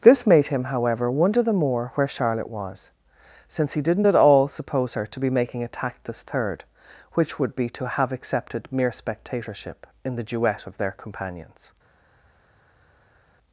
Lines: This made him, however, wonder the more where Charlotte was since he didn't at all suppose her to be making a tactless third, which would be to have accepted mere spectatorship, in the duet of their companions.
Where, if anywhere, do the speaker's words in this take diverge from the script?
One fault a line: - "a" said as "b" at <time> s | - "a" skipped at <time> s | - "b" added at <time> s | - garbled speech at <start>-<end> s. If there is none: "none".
none